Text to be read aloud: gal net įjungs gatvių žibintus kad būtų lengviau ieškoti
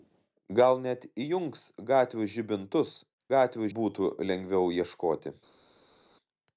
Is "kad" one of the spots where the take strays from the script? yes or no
yes